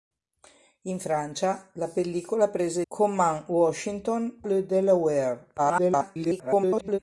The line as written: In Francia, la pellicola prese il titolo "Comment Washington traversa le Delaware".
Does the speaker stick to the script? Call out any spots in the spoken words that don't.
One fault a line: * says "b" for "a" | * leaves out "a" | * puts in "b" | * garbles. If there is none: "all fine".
* leaves out "il titolo"
* leaves out "traversa"
* garbles